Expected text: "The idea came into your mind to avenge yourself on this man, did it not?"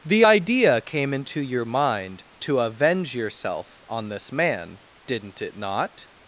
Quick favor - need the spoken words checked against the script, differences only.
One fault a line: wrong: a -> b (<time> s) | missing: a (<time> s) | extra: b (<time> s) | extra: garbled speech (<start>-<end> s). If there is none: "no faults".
wrong: did -> didn't (5.1 s)